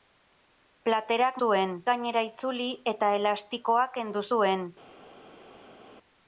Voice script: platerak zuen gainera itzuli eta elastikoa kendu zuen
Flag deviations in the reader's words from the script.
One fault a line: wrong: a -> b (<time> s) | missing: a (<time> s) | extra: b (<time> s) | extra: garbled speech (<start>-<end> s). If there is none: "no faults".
no faults